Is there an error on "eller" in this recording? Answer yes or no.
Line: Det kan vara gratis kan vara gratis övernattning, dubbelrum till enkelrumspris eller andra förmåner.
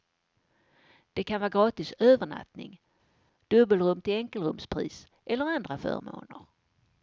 no